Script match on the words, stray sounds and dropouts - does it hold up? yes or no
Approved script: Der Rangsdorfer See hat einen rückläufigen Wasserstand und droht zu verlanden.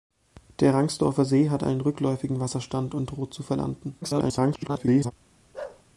no